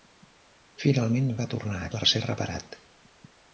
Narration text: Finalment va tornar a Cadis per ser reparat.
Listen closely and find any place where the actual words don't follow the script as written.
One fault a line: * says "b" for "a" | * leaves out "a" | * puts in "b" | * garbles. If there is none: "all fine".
* leaves out "Cadis"